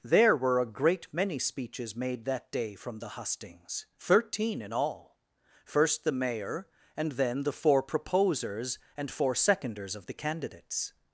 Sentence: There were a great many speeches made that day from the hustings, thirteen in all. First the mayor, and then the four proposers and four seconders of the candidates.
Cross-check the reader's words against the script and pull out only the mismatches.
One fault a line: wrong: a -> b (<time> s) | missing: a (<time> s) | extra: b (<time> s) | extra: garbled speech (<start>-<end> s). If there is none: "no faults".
no faults